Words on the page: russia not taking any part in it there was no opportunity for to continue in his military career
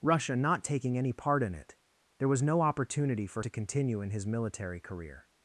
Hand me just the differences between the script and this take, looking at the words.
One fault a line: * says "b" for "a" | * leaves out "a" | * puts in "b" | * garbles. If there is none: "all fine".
all fine